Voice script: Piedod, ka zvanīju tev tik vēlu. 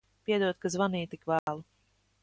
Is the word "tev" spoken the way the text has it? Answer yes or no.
no